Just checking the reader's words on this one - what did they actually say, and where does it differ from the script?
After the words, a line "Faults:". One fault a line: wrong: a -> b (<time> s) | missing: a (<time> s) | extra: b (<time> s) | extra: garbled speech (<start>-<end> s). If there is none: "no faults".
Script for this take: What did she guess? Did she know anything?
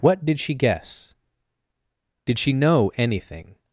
What did she guess? Did she know anything?
Faults:
no faults